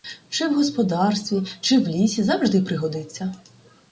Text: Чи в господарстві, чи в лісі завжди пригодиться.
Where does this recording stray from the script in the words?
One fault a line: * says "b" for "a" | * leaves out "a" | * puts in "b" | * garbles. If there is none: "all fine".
all fine